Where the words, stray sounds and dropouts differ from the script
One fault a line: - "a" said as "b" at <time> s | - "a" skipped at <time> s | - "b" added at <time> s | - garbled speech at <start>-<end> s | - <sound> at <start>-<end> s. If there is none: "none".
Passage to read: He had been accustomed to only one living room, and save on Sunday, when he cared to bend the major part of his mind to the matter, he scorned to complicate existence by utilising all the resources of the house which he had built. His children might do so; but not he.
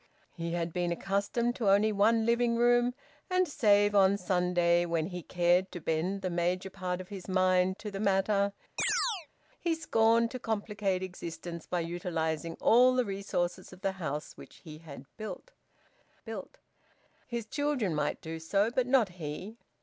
- chirp at 8.8-9.3 s
- "built" added at 16.2 s